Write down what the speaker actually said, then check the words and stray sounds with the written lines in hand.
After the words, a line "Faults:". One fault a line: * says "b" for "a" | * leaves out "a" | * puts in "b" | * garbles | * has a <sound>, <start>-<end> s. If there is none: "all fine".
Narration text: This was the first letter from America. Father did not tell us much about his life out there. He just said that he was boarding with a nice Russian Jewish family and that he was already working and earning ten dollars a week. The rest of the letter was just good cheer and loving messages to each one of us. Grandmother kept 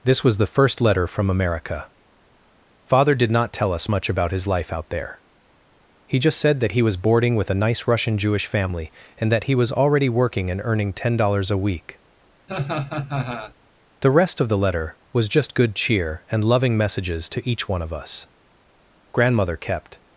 This was the first letter from America. Father did not tell us much about his life out there. He just said that he was boarding with a nice Russian Jewish family and that he was already working and earning ten dollars a week. The rest of the letter was just good cheer and loving messages to each one of us. Grandmother kept
Faults:
* has a laugh, 12.5-13.5 s